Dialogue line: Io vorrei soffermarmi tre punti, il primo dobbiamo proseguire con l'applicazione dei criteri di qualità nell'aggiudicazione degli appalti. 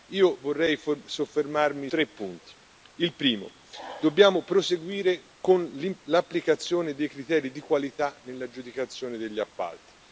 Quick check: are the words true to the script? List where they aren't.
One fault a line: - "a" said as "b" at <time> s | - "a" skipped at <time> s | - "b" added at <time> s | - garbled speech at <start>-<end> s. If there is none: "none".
none